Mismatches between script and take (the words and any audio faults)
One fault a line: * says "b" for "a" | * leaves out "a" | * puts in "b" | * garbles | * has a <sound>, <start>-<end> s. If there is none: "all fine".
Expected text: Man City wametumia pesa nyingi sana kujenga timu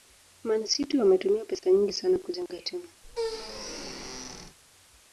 * has a squeak, 3.0-4.6 s